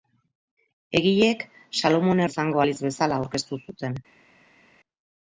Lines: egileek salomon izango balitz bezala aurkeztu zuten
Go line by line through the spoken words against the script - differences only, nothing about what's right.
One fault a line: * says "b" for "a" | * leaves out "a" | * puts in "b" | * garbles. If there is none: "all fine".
all fine